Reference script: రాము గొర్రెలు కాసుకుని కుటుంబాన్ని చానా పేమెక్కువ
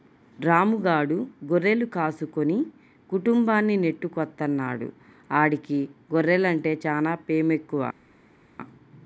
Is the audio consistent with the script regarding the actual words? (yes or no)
no